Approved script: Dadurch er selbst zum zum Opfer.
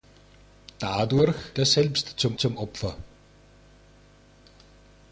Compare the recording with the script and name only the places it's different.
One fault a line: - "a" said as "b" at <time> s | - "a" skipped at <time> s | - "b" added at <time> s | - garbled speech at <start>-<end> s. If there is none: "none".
none